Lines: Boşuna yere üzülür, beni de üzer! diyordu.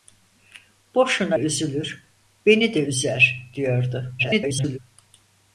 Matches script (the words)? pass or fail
fail